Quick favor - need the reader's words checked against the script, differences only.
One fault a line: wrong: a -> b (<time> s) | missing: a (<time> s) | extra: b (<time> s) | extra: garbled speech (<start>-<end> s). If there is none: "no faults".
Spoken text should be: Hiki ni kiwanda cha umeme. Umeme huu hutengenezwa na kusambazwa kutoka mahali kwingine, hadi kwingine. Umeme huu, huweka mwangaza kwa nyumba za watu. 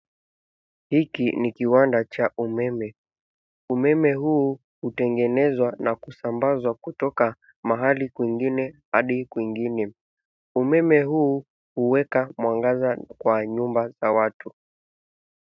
no faults